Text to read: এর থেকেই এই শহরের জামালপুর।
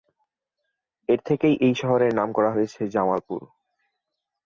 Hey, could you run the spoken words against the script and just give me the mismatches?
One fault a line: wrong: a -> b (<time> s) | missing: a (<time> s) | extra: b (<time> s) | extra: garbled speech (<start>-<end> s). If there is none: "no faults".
extra: নাম করা হয়েছে (2.1 s)